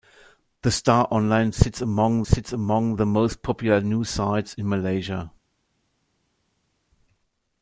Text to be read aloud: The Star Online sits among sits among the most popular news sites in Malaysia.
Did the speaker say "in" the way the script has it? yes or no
yes